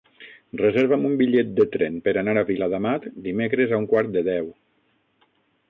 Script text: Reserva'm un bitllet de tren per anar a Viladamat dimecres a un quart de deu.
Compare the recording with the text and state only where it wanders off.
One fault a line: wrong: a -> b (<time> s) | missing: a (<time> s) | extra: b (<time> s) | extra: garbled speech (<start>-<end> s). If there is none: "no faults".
no faults